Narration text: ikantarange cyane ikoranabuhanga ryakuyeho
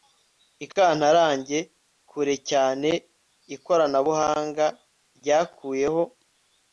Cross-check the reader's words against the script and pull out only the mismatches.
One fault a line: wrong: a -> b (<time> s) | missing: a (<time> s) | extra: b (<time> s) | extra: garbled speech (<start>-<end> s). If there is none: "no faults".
extra: kure (2.1 s)